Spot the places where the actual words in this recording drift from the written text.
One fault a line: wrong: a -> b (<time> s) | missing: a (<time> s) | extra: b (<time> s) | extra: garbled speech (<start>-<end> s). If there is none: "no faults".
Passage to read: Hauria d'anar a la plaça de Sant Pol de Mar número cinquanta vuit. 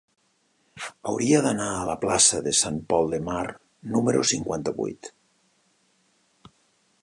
no faults